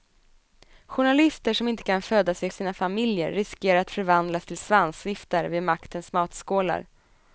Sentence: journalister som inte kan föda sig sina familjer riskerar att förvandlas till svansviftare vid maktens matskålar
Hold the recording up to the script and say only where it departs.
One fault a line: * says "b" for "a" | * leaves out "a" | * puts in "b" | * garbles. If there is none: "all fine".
all fine